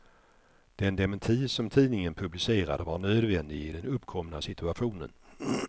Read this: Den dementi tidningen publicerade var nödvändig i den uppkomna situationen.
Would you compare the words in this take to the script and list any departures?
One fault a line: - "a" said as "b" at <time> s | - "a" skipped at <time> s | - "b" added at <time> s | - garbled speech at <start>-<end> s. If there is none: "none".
- "som" added at 1.5 s